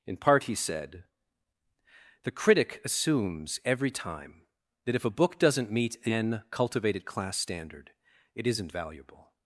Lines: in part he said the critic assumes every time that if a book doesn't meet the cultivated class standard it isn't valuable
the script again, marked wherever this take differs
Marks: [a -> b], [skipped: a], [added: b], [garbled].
in part he said the critic assumes every time that if a book doesn't meet [the -> an] cultivated class standard it isn't valuable